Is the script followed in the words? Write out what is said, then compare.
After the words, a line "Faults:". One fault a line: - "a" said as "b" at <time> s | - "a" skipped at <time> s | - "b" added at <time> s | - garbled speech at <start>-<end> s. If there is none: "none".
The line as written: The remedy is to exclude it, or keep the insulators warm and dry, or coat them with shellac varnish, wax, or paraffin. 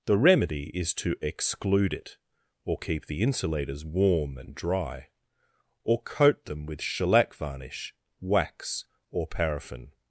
The remedy is to exclude it, or keep the insulators warm and dry, or coat them with shellac varnish, wax, or paraffin.
Faults:
none